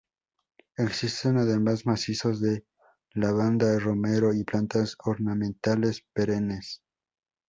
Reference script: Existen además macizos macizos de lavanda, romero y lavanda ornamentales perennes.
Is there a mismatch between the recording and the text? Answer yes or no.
yes